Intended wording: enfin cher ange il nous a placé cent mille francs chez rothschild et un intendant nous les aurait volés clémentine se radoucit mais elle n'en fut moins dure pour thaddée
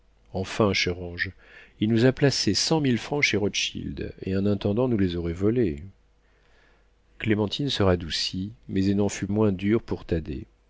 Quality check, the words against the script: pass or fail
pass